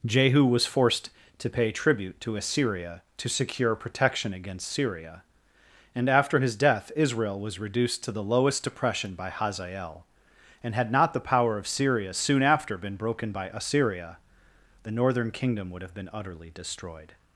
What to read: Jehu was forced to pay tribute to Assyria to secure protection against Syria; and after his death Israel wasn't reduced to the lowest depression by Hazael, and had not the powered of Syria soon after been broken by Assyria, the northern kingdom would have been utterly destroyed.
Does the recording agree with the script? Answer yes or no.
no